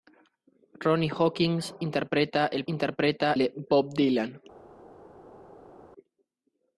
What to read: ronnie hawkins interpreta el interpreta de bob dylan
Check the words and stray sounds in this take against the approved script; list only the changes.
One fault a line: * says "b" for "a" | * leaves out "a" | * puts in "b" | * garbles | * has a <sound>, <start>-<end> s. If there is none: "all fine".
all fine